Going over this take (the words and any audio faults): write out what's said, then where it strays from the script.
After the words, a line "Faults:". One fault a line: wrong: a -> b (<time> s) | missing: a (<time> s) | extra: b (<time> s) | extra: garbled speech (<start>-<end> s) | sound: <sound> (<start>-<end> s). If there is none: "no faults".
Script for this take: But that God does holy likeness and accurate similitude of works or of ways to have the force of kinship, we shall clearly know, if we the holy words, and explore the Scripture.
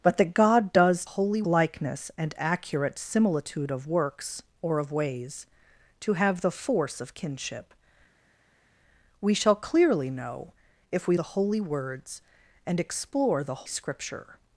But that God does holy likeness and accurate similitude of works or of ways to have the force of kinship, we shall clearly know, if we the holy words, and explore the Scripture.
Faults:
no faults